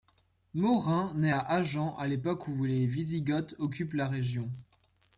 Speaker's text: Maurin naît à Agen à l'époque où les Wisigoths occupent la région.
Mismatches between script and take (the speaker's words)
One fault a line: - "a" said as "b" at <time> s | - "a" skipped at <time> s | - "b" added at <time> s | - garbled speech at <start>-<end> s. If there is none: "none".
none